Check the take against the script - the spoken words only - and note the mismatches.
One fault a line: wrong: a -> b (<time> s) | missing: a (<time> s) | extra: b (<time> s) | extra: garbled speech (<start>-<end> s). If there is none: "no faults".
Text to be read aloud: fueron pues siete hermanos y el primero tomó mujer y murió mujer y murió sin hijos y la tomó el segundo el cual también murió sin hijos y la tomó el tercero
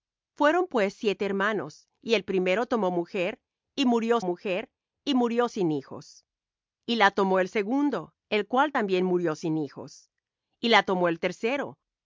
no faults